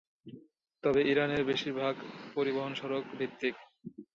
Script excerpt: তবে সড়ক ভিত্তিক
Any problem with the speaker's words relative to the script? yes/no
yes